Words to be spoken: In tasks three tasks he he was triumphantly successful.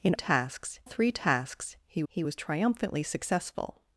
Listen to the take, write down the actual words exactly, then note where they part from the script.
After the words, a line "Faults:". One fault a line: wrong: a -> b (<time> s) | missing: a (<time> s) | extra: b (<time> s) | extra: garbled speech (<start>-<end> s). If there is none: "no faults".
In tasks three tasks he he was triumphantly successful.
Faults:
no faults